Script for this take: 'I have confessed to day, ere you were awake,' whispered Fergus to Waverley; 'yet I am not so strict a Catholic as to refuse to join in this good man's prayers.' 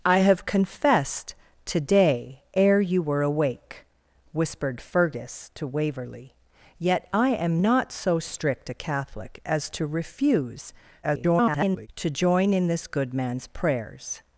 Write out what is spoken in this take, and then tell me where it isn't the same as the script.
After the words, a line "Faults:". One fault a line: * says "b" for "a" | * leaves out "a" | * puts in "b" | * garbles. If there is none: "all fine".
'I have confessed to day, ere you were awake,' whispered Fergus to Waverley; 'yet I am not so strict a Catholic as to refuse [garbled] to join in this good man's prayers.'
Faults:
* garbles